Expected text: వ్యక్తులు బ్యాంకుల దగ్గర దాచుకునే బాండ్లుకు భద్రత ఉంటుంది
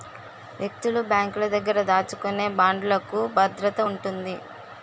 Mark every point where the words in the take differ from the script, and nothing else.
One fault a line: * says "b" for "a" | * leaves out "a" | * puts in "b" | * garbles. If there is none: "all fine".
all fine